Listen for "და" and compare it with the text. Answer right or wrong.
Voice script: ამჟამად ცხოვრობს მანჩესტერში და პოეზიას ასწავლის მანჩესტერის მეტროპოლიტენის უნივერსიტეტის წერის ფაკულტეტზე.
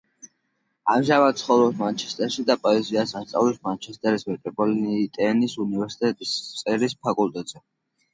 right